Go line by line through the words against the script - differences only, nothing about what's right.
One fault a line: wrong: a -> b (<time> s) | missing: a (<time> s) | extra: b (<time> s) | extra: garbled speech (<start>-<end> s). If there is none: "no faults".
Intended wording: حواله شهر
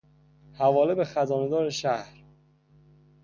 extra: به خزانهدار (0.9 s)